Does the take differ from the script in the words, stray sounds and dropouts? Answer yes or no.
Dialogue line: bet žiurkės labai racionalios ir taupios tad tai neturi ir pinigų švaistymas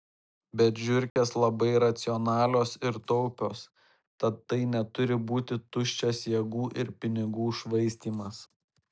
yes